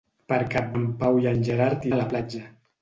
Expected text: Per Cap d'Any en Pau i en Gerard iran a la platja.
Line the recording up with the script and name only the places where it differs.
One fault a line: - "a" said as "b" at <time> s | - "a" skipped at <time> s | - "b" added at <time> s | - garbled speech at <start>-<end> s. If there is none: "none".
- "d'Any" skipped at 0.7 s
- "iran" skipped at 1.9 s